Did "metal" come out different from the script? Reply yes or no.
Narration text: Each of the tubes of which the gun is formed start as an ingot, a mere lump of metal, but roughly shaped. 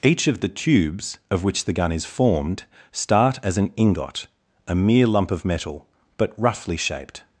no